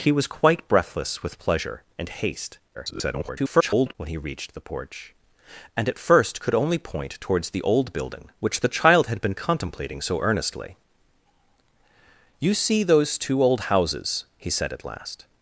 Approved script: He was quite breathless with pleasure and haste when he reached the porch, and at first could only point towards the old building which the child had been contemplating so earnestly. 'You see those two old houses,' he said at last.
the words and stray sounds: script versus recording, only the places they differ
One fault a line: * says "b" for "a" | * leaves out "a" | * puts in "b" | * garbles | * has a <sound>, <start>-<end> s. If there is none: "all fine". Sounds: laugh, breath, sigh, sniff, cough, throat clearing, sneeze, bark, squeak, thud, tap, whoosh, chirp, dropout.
* garbles